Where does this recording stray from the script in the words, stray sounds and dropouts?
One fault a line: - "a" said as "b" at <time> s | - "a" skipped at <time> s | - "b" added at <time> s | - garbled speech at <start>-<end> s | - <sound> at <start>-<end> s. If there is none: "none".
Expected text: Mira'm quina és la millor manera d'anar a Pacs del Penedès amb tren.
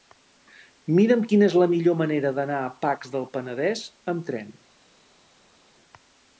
none